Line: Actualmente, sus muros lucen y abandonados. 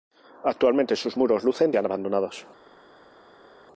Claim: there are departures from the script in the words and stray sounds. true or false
false